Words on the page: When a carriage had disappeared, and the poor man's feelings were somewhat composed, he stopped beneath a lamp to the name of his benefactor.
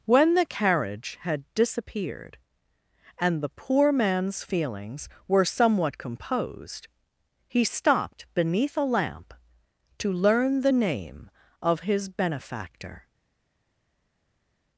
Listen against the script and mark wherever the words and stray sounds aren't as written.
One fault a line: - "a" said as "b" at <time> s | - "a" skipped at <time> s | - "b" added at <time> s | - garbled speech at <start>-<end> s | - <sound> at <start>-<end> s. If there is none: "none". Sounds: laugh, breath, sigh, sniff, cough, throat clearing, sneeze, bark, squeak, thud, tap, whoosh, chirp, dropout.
- "a" said as "the" at 0.3 s
- "learn" added at 10.1 s